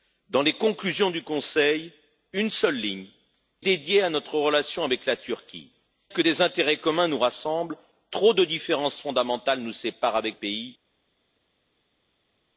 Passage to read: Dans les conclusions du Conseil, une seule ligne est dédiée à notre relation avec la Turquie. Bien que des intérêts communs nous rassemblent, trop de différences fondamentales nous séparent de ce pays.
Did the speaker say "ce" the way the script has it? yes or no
no